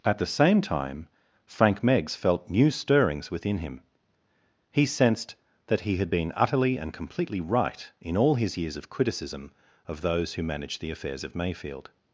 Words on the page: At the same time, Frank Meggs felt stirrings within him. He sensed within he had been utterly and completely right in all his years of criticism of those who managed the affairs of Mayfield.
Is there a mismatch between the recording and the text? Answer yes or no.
yes